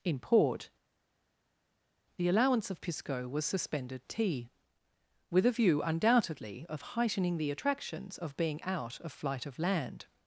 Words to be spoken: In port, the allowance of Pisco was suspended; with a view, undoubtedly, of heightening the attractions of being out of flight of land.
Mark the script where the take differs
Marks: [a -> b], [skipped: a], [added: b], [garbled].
In port, the allowance of Pisco was suspended; [added: tea] with a view, undoubtedly, of heightening the attractions of being out of flight of land.